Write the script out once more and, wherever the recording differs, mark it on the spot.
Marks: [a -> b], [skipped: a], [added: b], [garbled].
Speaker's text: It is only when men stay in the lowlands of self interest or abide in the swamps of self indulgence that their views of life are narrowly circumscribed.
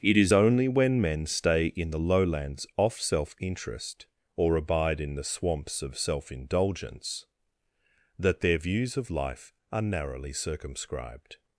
It is only when men stay in the lowlands [of -> off] self interest or abide in the swamps of self indulgence that their views of life are narrowly circumscribed.